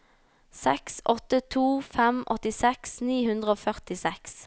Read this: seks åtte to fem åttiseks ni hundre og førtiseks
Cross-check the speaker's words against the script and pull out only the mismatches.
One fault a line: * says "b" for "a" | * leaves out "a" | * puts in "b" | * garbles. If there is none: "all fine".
all fine